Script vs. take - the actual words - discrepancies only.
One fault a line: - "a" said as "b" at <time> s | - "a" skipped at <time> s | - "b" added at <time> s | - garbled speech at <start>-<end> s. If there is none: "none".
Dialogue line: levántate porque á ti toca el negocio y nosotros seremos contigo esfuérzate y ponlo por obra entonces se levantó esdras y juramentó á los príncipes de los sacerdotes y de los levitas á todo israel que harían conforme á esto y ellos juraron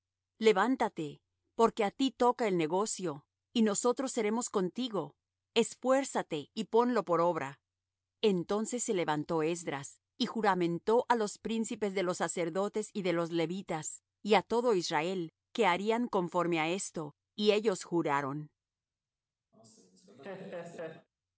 - "y" added at 14.2 s